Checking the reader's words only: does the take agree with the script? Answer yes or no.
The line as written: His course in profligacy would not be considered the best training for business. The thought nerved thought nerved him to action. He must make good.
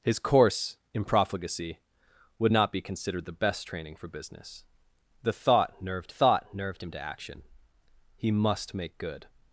yes